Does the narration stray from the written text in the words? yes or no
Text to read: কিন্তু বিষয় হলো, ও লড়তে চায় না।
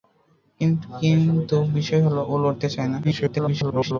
yes